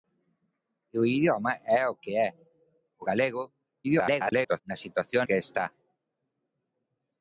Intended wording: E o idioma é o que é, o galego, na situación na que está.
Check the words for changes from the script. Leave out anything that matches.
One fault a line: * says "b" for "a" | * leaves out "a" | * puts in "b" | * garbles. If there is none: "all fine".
* garbles
* leaves out "na"